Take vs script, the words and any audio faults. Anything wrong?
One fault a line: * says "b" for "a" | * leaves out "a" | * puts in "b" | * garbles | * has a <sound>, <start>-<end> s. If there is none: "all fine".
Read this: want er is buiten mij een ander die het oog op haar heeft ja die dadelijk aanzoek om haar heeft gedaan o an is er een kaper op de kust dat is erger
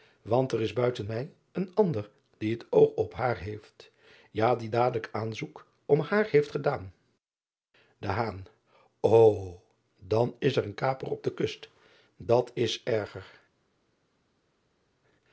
all fine